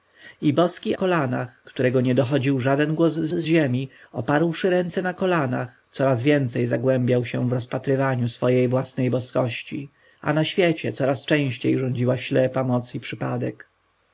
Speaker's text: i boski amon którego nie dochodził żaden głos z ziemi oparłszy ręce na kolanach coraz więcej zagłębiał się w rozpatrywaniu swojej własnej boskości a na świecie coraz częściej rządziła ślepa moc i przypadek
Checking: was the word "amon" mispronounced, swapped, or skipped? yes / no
yes